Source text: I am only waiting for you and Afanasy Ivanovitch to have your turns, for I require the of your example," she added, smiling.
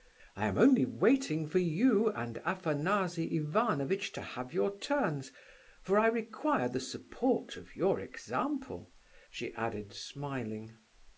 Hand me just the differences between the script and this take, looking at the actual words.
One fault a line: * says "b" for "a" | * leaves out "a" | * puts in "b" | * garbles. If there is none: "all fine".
* puts in "support"